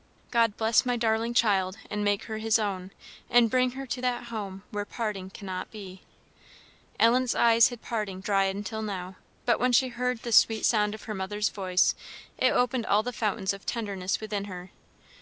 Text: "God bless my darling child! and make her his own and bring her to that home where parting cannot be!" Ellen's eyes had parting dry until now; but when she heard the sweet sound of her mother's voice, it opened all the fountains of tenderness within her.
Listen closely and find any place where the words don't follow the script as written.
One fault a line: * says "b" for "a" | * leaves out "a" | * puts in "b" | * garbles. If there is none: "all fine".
all fine